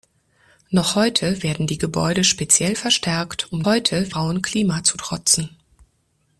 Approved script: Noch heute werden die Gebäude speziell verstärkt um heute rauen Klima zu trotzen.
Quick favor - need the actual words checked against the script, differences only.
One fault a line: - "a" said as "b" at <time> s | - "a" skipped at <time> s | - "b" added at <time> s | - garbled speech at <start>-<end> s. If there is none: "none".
none